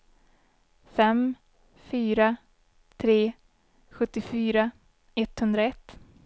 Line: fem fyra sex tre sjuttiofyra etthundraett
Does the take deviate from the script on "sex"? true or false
true